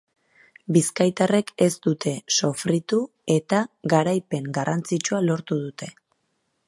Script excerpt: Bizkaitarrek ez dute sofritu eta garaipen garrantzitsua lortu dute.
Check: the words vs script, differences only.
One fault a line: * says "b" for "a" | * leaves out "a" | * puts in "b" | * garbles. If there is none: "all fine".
all fine